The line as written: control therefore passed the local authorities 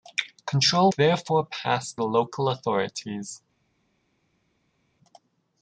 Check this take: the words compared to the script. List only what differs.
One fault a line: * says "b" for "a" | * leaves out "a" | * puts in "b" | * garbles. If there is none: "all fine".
all fine